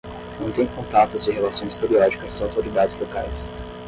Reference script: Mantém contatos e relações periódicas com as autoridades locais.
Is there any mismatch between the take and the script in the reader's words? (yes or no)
yes